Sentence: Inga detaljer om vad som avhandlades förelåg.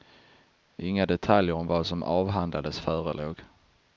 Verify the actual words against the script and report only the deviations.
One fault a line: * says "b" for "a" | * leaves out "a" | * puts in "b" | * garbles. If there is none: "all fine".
all fine